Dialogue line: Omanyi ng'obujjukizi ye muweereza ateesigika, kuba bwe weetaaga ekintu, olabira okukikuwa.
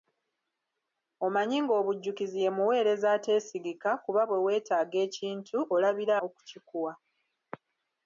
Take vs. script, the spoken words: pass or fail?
pass